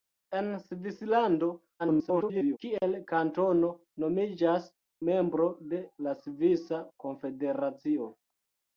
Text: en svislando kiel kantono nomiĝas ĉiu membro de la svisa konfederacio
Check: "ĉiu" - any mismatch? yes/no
yes